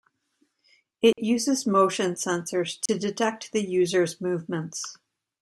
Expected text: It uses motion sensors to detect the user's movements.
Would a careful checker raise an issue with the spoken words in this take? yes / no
no